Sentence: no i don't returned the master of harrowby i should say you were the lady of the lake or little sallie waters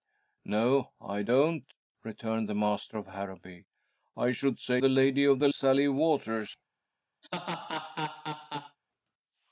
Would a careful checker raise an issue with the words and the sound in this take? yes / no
yes